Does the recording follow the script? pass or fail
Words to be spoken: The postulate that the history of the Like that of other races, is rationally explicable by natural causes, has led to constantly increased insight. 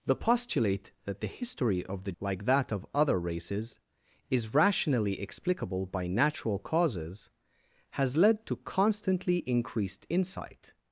pass